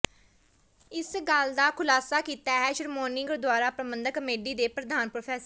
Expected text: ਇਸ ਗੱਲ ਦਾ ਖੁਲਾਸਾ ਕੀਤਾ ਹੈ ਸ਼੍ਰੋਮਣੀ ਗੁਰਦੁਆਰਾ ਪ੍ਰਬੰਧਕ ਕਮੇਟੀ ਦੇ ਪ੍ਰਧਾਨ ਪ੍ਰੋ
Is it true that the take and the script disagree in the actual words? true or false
false